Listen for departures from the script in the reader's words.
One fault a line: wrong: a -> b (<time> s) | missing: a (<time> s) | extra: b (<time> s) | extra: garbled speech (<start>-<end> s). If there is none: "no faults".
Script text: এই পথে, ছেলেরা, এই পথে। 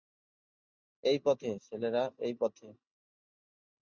no faults